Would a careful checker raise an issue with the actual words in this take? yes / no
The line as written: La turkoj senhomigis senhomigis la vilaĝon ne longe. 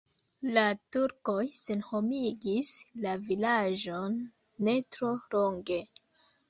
yes